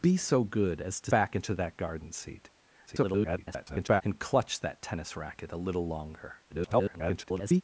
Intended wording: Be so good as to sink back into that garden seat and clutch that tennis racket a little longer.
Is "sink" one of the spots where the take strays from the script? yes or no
yes